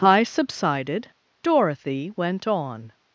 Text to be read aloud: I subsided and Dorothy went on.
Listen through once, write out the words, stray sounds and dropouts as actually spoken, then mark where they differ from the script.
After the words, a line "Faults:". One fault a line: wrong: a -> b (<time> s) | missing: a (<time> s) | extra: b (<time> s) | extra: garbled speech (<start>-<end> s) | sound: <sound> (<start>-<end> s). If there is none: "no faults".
I subsided Dorothy went on.
Faults:
missing: and (1.1 s)